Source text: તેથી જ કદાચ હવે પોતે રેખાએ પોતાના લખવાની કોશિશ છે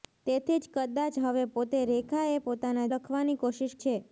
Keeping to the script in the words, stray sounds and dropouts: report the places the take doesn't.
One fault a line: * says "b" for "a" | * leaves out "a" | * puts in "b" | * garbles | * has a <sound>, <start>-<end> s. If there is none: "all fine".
all fine